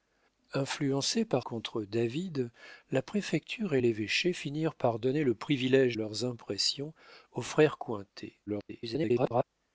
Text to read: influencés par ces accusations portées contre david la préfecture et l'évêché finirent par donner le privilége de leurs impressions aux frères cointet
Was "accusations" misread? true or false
true